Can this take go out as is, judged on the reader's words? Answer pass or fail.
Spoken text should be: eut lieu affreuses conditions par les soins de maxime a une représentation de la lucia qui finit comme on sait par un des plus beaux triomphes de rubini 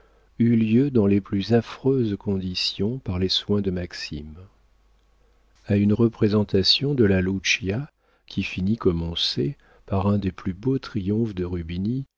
fail